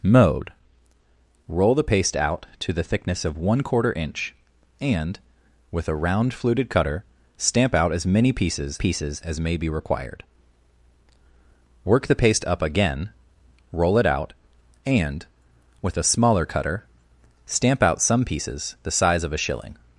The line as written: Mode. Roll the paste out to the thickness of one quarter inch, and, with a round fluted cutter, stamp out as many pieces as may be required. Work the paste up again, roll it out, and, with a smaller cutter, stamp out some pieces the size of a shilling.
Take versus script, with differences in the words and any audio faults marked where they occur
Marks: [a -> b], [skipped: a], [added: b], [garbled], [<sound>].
Mode. Roll the paste out to the thickness of one quarter inch, and, with a round fluted cutter, stamp out as many pieces [added: pieces] as may be required. Work the paste up again, roll it out, and, with a smaller cutter, stamp out some pieces the size of a shilling.